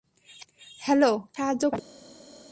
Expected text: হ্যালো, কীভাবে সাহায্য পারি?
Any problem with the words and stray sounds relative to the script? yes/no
no